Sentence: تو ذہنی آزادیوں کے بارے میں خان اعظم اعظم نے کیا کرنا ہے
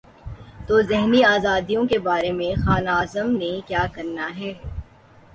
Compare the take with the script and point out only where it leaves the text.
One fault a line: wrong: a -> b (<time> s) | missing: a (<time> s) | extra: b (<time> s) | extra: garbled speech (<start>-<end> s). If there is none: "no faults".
missing: اعظم (3.3 s)